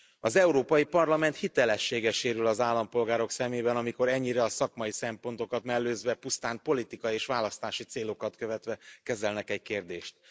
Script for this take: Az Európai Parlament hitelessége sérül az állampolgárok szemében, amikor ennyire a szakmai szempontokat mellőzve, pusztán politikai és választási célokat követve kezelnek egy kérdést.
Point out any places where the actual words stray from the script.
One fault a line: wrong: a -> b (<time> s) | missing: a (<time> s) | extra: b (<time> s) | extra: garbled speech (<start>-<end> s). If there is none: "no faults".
no faults